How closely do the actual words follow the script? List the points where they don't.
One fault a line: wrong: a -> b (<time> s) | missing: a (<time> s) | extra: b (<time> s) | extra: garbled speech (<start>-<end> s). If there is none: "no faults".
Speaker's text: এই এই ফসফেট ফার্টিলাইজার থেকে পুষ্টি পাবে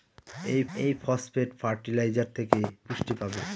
no faults